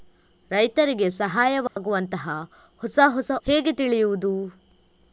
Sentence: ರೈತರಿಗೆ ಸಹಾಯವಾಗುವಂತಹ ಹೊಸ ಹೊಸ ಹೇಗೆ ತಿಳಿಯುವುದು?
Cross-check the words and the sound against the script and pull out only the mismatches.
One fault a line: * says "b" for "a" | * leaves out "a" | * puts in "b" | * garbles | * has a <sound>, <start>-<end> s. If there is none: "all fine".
* has a dropout, 1.7-1.8 s